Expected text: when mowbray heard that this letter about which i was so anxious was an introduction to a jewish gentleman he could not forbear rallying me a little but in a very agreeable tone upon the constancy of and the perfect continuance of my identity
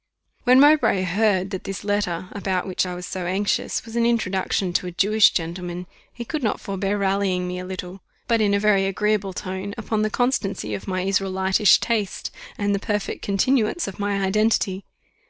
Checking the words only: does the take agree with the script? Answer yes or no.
no